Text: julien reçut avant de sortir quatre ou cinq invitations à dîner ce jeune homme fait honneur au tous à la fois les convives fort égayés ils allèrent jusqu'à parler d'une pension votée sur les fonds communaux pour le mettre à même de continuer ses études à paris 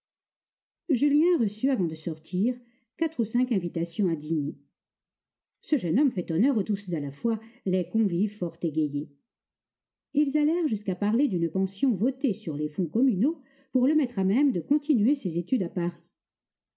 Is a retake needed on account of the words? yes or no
no